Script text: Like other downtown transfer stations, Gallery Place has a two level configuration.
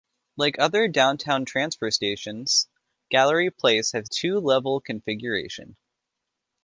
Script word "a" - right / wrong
wrong